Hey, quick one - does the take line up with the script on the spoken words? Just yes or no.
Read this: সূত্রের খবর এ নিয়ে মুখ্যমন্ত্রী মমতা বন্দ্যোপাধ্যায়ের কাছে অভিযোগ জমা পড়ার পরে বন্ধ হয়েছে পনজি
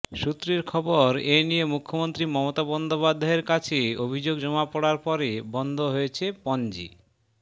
yes